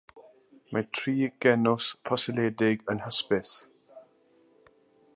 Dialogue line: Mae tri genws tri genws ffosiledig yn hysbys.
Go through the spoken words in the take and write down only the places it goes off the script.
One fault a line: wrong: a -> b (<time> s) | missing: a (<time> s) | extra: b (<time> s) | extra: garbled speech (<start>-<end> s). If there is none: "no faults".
missing: tri genws (1.9 s)